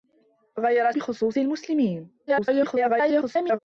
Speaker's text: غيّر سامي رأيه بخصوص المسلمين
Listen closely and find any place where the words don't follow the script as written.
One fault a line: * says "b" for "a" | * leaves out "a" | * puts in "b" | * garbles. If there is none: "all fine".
* leaves out "سامي رأيه"
* garbles